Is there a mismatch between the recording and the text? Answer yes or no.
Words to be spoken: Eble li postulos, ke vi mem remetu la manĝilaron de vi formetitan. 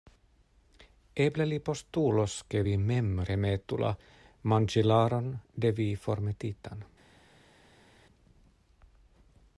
no